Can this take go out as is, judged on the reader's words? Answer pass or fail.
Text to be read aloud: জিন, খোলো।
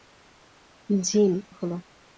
pass